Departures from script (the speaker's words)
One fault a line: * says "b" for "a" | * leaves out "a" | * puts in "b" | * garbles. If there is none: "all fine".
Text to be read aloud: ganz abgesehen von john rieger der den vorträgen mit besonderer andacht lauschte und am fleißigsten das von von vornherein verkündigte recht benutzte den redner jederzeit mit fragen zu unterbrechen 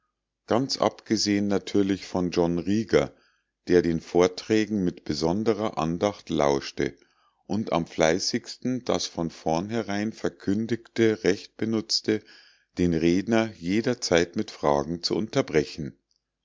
* puts in "natürlich"
* leaves out "von"